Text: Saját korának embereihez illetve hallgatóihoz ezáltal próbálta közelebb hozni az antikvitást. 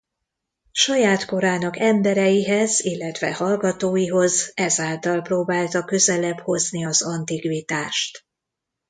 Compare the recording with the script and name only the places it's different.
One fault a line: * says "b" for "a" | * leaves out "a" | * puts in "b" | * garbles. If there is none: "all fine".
all fine